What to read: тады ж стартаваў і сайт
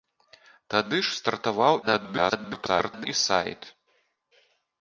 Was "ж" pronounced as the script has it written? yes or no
yes